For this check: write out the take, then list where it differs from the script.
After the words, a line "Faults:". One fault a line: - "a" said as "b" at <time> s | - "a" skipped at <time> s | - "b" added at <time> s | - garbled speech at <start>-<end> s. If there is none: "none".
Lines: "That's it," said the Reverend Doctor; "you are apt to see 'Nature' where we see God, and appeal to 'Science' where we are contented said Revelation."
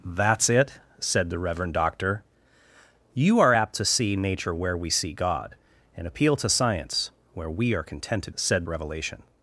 "That's it," said the Reverend Doctor; "you are apt to see 'Nature' where we see God, and appeal to 'Science' where we are contented said Revelation."
Faults:
none